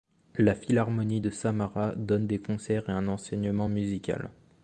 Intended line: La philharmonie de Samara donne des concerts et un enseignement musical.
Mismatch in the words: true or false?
false